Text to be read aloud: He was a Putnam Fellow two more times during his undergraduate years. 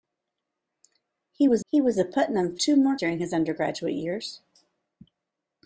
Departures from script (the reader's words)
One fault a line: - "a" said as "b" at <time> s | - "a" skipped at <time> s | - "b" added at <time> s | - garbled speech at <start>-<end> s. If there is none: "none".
- "he was" added at 1.6 s
- "Fellow" skipped at 2.6 s
- "times" skipped at 3.0 s